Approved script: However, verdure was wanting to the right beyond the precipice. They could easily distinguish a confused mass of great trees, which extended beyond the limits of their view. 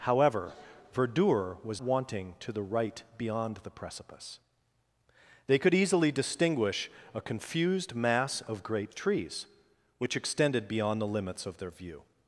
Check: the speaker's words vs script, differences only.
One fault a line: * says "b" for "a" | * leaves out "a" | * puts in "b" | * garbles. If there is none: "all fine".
all fine